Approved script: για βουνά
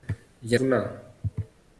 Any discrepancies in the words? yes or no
no